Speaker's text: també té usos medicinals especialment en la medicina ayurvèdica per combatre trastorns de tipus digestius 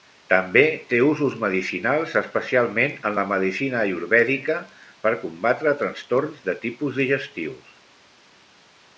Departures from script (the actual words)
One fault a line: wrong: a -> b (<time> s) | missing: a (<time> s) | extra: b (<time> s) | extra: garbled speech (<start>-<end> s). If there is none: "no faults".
no faults